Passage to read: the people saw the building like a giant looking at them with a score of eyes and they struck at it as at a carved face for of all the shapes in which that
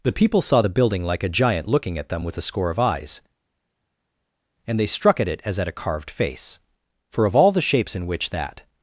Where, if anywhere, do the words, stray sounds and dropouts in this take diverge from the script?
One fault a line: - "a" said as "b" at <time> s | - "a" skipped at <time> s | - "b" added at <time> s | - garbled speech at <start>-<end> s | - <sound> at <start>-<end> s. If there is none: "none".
none